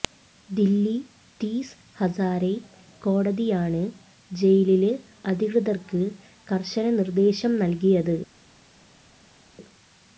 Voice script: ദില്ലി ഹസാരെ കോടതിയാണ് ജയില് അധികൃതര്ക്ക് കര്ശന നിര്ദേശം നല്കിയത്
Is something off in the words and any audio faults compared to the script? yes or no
yes